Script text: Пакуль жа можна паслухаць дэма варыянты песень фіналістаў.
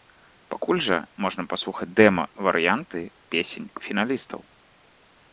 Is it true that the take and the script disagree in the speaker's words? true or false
false